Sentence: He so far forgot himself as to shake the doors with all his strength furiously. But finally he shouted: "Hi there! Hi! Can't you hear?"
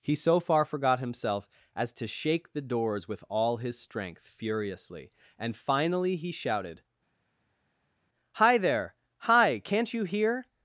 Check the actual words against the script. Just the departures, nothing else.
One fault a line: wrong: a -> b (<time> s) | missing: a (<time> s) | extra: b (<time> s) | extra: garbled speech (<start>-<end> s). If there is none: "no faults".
wrong: But -> And (5.4 s)